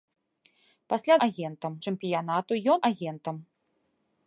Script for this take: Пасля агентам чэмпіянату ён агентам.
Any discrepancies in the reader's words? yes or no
no